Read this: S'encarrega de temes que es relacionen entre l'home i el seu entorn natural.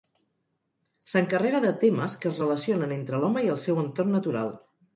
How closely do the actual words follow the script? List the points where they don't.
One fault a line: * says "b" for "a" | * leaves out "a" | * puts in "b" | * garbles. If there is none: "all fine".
all fine